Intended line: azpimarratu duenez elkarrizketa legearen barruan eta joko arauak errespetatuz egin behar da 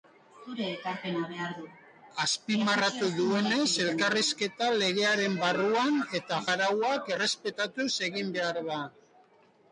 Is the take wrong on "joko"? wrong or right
wrong